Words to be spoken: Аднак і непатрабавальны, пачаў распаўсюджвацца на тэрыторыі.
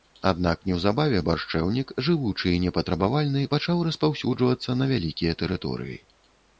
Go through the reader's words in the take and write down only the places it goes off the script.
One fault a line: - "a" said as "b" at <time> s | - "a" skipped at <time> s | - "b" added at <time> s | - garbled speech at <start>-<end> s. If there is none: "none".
- "неўзабаве баршчэўнік жывучы" added at 0.7 s
- "вялікія" added at 4.9 s